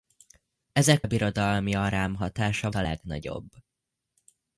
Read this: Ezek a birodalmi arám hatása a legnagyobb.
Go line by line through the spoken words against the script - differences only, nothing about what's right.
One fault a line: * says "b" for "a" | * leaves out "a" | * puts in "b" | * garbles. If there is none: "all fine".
all fine